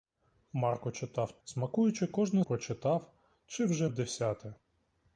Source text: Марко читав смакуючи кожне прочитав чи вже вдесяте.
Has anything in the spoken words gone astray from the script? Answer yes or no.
no